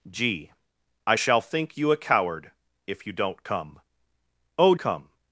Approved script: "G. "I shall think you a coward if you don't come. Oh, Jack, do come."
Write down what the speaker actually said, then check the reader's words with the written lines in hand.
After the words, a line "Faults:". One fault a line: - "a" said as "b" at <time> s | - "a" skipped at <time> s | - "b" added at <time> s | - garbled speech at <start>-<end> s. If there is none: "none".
"G. "I shall think you a coward if you don't come. Oh, Come."
Faults:
- "Jack do" skipped at 4.7 s